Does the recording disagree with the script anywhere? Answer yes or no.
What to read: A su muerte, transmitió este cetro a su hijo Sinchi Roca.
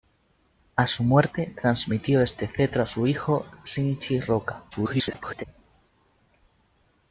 yes